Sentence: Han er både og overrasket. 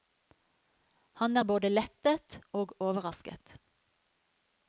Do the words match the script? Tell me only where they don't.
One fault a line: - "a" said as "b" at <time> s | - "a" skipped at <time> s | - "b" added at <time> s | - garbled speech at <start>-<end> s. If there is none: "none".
- "lettet" added at 1.7 s